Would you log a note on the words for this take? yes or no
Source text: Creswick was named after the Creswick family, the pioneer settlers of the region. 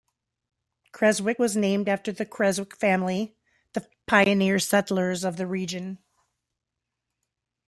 no